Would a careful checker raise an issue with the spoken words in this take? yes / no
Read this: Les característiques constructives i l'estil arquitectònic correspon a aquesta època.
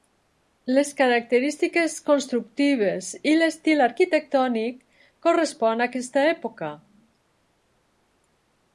no